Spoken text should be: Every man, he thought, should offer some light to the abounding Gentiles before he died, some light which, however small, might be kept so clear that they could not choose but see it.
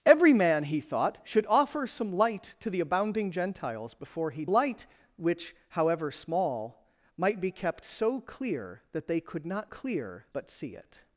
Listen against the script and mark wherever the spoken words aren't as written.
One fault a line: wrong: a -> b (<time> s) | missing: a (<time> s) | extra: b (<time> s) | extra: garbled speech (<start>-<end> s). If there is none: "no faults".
missing: died some (4.5 s)
wrong: choose -> clear (9.7 s)